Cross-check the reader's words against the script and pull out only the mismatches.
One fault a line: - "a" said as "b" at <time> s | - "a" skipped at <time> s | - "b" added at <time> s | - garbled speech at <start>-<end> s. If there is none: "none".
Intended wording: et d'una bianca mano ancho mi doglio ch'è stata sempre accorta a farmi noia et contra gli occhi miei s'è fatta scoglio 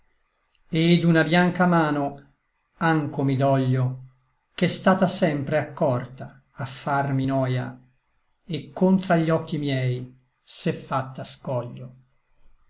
none